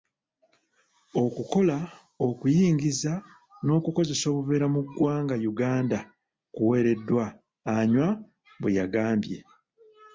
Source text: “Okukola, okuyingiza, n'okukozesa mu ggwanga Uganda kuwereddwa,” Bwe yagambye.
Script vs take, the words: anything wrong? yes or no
yes